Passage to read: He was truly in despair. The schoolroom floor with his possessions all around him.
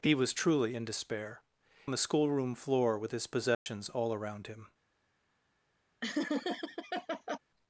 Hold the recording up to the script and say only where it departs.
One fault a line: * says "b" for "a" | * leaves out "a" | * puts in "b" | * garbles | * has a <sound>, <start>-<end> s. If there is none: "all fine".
* has a dropout, 3.5-3.7 s
* has a laugh, 6.0-7.4 s